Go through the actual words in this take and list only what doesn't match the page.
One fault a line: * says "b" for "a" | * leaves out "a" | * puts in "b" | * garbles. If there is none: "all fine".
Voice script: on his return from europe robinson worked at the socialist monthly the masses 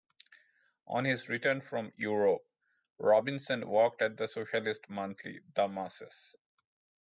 all fine